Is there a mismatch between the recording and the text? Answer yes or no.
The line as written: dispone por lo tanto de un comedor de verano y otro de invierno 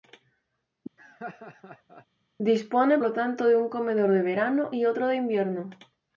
yes